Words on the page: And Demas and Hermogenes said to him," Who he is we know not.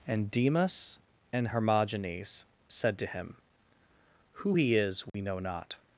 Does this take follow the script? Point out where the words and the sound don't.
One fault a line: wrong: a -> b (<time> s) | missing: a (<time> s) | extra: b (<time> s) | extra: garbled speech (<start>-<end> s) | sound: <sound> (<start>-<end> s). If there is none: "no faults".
sound: dropout (5.1-5.1 s)